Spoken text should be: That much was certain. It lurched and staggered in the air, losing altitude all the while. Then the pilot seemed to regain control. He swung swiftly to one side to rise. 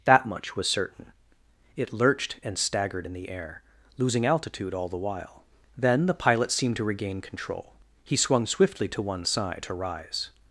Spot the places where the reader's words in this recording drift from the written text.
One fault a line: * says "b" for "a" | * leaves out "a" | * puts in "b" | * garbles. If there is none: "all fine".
all fine